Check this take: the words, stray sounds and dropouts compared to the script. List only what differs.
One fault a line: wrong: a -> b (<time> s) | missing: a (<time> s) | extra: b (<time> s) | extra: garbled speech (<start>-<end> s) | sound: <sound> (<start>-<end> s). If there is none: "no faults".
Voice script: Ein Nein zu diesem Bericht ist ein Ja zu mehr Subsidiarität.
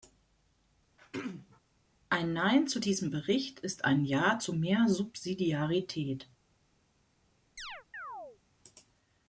sound: throat clearing (1.0-1.6 s)
sound: chirp (7.6-8.4 s)